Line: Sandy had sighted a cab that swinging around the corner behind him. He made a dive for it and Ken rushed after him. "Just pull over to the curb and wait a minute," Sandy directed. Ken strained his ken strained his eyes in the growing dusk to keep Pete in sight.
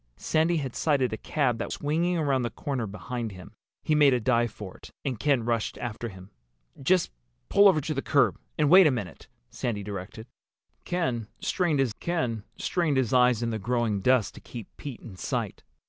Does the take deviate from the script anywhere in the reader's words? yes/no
no